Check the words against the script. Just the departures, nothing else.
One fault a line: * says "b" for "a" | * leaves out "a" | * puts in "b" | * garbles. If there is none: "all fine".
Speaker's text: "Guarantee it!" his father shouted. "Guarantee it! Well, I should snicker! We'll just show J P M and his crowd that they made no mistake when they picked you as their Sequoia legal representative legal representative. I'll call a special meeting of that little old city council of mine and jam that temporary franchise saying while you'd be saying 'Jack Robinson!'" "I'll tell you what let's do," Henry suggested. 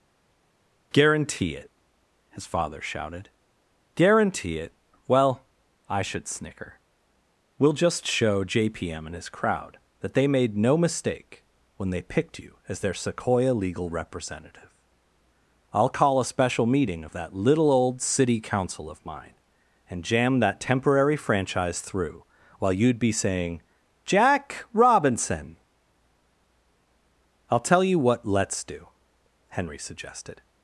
* leaves out "legal representative"
* says "through" for "saying"